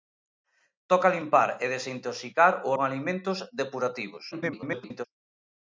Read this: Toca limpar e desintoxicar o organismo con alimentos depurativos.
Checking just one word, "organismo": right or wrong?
wrong